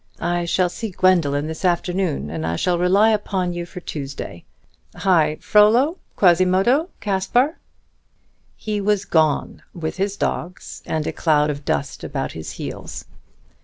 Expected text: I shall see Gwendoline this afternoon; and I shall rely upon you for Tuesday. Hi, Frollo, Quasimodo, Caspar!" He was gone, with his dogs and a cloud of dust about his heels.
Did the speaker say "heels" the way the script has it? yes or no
yes